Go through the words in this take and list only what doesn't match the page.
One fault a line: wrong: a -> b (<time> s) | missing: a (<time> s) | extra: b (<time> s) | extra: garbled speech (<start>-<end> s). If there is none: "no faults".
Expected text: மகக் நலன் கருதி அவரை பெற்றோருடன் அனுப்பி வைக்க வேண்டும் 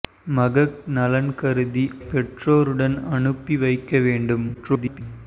missing: அவரை (1.8 s)
extra: garbled speech (4.5-5.0 s)